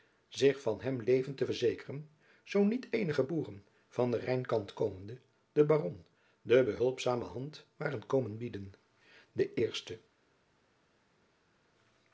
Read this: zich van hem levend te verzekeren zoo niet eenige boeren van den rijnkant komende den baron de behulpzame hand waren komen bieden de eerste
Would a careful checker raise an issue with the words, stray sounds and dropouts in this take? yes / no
no